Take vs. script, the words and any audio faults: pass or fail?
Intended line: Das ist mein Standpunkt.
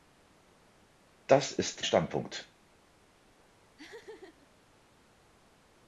fail